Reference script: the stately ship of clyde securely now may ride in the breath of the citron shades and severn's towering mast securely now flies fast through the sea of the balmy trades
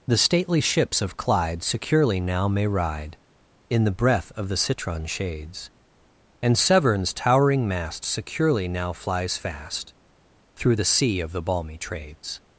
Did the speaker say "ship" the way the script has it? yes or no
no